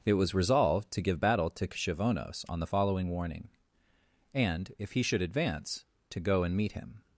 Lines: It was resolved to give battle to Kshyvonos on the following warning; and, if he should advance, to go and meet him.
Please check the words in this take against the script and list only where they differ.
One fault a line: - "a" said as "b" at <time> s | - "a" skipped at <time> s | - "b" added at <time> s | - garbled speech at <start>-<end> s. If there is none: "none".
none